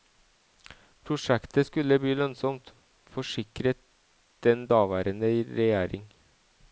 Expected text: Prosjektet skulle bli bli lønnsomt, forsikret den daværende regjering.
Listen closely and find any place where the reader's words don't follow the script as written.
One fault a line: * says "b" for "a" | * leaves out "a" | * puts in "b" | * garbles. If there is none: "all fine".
* leaves out "bli"